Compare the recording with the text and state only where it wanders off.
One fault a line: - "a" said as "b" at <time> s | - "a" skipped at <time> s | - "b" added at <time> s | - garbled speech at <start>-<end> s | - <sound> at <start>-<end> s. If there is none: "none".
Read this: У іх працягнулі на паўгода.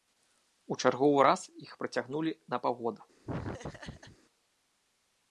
- "чарговы раз" added at 0.8 s
- laugh at 3.2-4.2 s